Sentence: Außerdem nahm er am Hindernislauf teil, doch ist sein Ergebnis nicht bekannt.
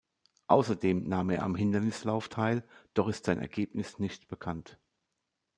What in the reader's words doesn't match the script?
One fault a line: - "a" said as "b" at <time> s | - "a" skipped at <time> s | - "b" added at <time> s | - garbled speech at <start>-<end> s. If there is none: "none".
none